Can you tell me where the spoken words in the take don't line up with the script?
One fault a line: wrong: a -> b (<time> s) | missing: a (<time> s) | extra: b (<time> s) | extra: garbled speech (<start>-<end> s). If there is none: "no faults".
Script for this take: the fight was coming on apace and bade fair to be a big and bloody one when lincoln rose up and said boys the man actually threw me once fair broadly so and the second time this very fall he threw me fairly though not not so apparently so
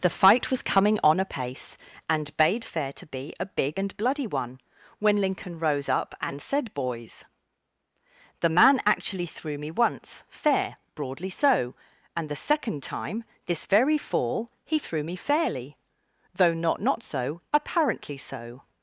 no faults